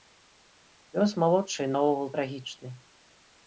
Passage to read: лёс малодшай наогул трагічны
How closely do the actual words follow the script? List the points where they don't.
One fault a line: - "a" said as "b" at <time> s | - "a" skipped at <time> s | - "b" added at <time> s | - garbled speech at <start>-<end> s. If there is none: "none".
none